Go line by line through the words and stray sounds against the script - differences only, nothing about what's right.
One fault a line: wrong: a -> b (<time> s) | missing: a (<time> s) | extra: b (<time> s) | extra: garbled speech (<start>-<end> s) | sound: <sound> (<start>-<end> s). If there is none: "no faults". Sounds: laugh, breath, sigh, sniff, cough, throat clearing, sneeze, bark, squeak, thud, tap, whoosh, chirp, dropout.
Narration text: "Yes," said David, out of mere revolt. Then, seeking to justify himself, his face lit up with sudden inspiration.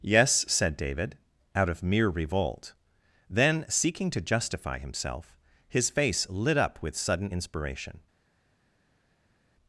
no faults